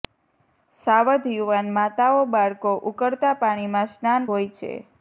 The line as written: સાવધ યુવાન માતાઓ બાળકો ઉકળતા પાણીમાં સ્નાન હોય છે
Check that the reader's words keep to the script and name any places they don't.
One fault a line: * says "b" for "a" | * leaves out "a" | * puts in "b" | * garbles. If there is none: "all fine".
all fine